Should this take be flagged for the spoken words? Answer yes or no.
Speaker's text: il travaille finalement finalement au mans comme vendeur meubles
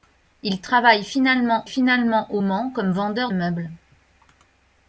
no